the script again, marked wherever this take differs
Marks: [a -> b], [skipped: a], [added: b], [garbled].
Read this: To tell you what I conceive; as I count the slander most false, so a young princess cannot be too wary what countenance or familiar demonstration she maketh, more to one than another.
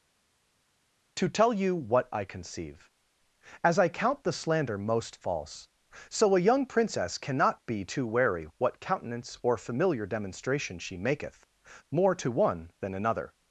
To tell you what I conceive; as I count the slander most false, so a young princess cannot be too wary what countenance or familiar demonstration she maketh, more to one than another.